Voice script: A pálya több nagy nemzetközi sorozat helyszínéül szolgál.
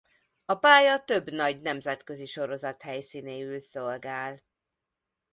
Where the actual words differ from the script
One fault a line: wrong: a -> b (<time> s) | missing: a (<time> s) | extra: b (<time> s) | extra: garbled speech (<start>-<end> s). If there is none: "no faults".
no faults